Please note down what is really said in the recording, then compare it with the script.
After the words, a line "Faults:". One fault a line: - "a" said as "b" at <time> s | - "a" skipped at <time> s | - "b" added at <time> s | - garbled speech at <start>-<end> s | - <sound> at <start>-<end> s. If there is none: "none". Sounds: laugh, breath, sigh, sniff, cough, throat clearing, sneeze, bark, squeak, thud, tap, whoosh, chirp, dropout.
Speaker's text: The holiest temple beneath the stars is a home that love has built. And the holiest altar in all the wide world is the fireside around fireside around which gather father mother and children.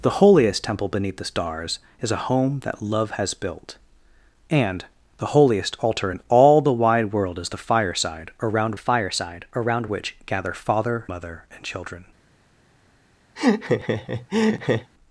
The holiest temple beneath the stars is a home that love has built. And the holiest altar in all the wide world is the fireside around fireside around which gather father mother and children.
Faults:
- laugh at 13.4-14.9 s